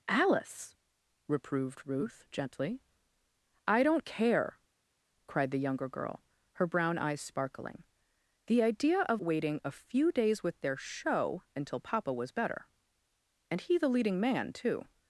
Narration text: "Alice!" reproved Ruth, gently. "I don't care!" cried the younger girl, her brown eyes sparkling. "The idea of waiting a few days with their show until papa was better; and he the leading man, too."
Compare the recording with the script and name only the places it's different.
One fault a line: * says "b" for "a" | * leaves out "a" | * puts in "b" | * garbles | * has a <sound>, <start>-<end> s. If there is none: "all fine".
all fine